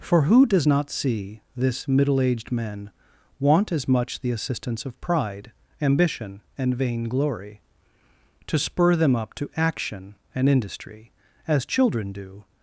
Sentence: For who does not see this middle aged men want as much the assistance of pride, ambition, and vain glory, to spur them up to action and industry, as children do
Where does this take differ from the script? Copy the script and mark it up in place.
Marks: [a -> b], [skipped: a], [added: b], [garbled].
For who does not see this middle aged men want as much the assistance of pride, ambition, and vain glory, to spur them up to action and industry, as children do